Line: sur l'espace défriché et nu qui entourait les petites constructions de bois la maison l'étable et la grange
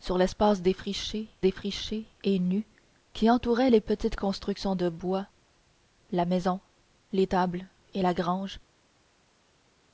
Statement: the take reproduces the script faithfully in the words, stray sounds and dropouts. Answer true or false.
false